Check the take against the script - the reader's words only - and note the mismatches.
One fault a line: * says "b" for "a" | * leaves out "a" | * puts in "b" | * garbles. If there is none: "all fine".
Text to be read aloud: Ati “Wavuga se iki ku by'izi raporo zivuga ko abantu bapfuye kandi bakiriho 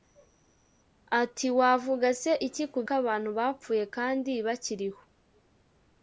* leaves out "by'izi raporo zivuga"